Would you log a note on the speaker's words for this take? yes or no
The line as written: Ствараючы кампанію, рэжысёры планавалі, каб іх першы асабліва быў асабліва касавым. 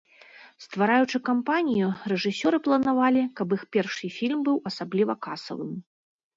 yes